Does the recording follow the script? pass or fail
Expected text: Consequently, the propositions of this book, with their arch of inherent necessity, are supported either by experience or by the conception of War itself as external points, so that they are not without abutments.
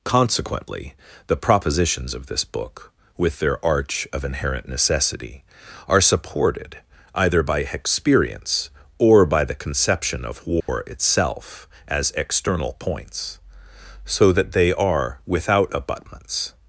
fail